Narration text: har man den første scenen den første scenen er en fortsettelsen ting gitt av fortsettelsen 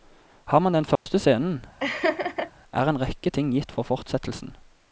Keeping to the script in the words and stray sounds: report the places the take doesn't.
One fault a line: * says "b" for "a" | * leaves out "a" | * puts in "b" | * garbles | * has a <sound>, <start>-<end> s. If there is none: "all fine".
* has a dropout, 1.0-1.1 s
* leaves out "den første scenen"
* has a laugh, 1.8-2.5 s
* says "rekke" for "fortsettelsen"
* says "for" for "av"